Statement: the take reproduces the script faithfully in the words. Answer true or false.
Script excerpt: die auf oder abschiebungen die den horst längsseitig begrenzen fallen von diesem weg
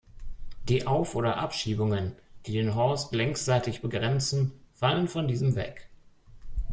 true